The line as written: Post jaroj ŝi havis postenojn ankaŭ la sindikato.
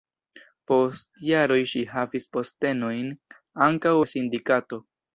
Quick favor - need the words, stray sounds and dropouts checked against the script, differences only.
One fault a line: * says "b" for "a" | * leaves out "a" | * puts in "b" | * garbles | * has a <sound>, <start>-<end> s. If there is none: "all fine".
all fine